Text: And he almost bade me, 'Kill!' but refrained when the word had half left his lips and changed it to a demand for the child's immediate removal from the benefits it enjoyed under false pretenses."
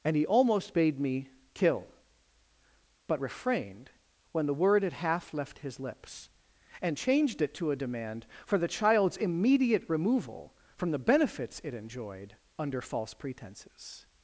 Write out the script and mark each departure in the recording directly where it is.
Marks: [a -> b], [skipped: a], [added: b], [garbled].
And he almost bade me, 'Kill!' but refrained when the word had half left his lips and changed it to a demand for the child's immediate removal from the benefits it enjoyed under false pretenses."